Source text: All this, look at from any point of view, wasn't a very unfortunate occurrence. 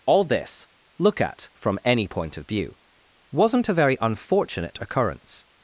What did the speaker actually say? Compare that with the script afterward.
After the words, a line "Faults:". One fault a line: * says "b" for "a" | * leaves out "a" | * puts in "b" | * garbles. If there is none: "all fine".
All this, look at from any point of view, wasn't a very unfortunate occurrence.
Faults:
all fine